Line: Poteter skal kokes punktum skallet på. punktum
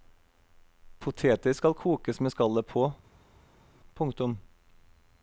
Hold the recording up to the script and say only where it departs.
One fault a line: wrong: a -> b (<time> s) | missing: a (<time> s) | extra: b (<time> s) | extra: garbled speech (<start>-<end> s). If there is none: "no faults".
wrong: punktum -> med (2.2 s)